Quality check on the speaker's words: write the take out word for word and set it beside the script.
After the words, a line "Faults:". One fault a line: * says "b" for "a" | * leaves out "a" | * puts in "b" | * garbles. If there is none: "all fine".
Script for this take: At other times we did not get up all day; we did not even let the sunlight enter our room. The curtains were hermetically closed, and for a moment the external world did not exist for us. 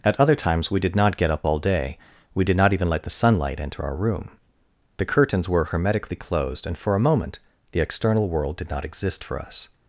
At other times we did not get up all day; we did not even let the sunlight enter our room. The curtains were hermetically closed, and for a moment the external world did not exist for us.
Faults:
all fine